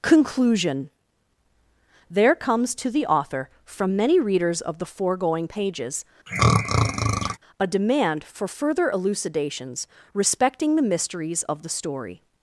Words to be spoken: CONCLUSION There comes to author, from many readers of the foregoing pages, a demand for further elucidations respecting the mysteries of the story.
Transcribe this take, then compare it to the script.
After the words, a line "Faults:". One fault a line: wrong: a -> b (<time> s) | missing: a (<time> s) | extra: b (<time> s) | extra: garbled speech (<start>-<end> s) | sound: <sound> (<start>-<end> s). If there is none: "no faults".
CONCLUSION There comes to the author, from many readers of the foregoing pages, a demand for further elucidations respecting the mysteries of the story.
Faults:
extra: the (2.9 s)
sound: throat clearing (6.3-7.4 s)